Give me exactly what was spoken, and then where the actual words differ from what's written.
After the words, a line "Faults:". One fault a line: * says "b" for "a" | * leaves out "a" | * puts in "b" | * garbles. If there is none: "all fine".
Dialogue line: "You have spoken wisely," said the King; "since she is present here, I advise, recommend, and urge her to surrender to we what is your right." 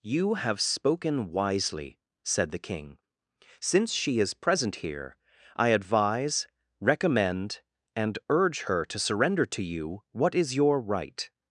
"You have spoken wisely," said the King; "since she is present here, I advise, recommend, and urge her to surrender to you what is your right."
Faults:
* says "you" for "we"